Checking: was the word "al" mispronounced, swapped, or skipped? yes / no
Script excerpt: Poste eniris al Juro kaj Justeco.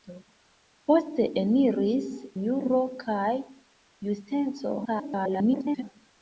yes